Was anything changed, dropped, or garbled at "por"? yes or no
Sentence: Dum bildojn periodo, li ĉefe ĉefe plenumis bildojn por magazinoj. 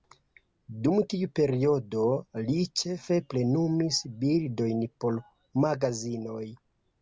no